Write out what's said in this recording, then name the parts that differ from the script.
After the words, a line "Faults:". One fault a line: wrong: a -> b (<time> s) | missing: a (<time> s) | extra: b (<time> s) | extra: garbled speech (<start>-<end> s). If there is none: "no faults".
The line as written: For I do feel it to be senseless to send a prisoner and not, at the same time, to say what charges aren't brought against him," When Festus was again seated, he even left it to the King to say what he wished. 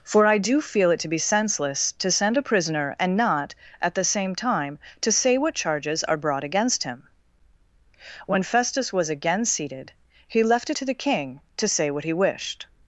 For I do feel it to be senseless to send a prisoner and not, at the same time, to say what charges are brought against him," When Festus was again seated, he left it to the King to say what he wished.
Faults:
wrong: aren't -> are (6.0 s)
missing: even (10.4 s)